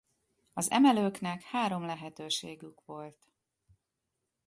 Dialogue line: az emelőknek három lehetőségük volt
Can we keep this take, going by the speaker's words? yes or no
yes